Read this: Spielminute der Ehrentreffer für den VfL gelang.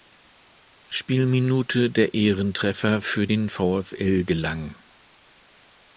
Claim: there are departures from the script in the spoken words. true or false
false